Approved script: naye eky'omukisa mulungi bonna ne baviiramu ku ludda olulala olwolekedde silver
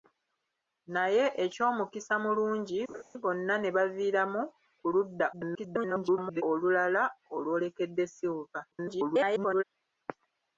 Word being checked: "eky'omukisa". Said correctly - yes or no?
yes